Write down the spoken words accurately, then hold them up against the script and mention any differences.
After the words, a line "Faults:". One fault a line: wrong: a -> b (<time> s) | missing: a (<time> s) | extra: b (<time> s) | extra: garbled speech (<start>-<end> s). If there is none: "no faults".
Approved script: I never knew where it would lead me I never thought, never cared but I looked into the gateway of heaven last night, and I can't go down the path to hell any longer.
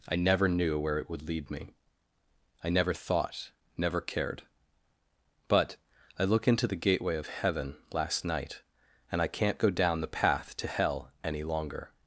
I never knew where it would lead me I never thought, never cared but I look into the gateway of heaven last night, and I can't go down the path to hell any longer.
Faults:
wrong: looked -> look (6.2 s)